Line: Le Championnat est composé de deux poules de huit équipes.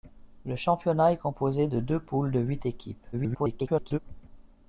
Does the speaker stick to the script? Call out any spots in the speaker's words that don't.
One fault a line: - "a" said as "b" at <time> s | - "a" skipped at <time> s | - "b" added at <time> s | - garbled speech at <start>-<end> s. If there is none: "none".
- garbled speech at 3.1-4.0 s